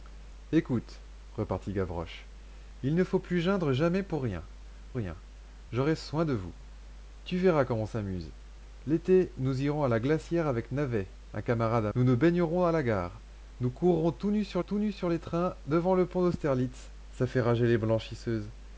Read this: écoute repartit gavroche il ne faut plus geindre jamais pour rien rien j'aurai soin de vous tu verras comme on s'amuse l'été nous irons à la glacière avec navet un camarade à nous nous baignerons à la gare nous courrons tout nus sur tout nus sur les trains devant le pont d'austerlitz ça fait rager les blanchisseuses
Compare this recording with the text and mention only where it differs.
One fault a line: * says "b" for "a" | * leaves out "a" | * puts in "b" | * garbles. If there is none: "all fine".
all fine